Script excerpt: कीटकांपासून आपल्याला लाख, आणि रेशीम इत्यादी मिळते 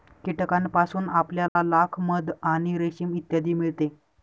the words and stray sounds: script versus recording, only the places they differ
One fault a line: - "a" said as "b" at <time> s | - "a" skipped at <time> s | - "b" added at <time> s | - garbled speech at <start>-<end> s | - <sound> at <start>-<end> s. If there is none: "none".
- dropout at 1.5-1.6 s
- "मध" added at 2.0 s